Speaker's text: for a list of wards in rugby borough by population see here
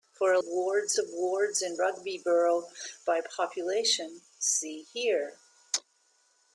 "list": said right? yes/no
no